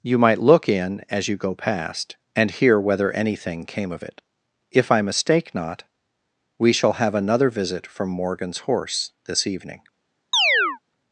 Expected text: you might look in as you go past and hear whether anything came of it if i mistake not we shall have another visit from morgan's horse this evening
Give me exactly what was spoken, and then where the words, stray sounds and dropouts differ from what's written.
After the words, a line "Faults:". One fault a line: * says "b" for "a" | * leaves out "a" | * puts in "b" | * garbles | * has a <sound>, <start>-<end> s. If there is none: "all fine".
you might look in as you go past and hear whether anything came of it if i mistake not we shall have another visit from morgan's horse this evening
Faults:
* has a chirp, 10.3-10.8 s